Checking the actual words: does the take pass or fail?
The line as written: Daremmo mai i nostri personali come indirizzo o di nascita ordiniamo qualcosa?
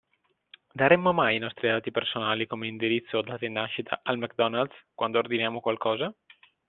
fail